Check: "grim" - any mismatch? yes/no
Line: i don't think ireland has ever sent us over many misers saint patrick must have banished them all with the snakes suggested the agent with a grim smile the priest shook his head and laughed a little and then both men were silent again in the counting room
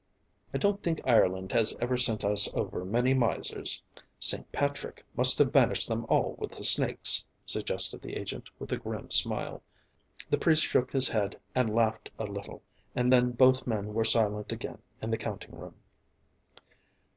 no